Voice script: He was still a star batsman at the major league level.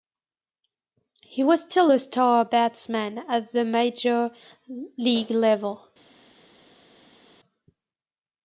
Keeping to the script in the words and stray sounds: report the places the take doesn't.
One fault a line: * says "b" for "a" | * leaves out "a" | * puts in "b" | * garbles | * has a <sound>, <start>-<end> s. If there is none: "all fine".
all fine